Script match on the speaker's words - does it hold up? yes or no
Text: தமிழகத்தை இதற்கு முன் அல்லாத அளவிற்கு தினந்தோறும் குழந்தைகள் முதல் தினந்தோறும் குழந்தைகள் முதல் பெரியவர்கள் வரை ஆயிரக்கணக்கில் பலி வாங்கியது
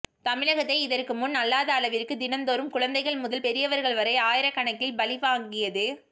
no